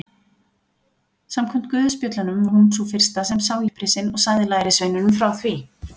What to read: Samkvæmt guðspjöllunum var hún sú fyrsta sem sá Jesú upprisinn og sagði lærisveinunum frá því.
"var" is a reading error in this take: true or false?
true